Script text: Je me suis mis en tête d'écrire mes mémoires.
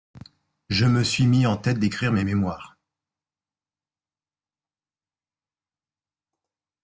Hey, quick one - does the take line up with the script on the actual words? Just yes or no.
yes